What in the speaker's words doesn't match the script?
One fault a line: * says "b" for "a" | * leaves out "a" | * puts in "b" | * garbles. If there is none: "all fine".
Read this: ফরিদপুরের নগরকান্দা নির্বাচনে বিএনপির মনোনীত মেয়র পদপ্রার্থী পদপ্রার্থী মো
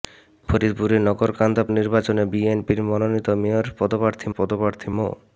all fine